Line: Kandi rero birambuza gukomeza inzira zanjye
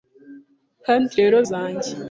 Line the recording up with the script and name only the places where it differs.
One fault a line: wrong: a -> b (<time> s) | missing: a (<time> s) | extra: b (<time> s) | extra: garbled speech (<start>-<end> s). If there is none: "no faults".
missing: birambuza gukomeza inzira (1.4 s)